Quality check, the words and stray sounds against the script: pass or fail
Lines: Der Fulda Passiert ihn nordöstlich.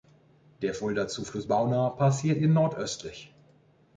fail